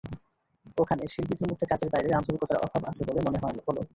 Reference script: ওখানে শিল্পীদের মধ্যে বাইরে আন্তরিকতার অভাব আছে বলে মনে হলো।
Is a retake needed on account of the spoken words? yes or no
yes